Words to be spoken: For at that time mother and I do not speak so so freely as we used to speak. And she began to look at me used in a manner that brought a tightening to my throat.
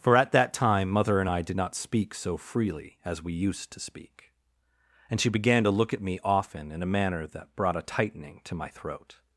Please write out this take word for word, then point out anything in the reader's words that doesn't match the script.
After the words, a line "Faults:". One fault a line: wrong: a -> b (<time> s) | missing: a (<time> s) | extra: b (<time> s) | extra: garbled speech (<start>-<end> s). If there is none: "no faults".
For at that time mother and I did not speak so freely as we used to speak. And she began to look at me often in a manner that brought a tightening to my throat.
Faults:
wrong: do -> did (1.4 s)
missing: so (2.4 s)
wrong: used -> often (6.2 s)